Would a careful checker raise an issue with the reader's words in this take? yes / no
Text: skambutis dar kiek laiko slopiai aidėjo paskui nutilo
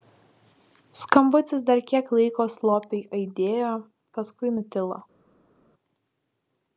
no